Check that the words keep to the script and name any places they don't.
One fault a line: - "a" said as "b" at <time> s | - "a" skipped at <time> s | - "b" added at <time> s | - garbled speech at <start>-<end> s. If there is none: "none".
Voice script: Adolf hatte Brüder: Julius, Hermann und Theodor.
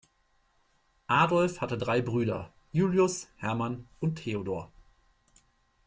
- "drei" added at 1.7 s